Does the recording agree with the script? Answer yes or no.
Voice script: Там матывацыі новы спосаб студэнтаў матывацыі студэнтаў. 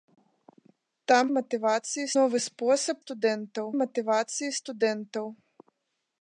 yes